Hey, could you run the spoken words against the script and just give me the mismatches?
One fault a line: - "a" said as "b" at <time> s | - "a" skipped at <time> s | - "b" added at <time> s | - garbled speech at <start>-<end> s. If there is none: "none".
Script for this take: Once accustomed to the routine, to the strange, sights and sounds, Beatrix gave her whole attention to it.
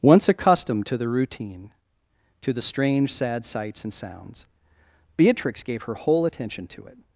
- "sad" added at 3.1 s